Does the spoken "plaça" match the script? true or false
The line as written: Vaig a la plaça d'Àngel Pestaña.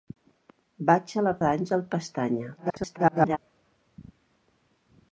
false